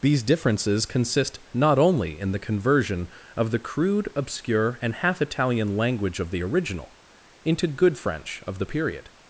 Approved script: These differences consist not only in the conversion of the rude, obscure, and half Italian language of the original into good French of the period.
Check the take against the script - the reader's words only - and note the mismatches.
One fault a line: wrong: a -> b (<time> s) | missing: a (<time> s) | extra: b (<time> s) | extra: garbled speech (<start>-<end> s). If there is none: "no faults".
wrong: rude -> crude (3.6 s)